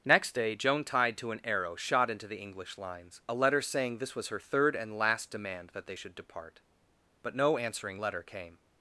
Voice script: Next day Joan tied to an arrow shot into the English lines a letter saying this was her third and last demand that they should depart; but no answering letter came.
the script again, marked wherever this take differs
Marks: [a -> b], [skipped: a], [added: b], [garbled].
Next day Joan tied to an arrow shot into the English lines a letter saying this was her third and last demand that they should depart; but no answering letter came.